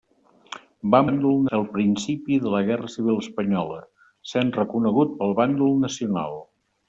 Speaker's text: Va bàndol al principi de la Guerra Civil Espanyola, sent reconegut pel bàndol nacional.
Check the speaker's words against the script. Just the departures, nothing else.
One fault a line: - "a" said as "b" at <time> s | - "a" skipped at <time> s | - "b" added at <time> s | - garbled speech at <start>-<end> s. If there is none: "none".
none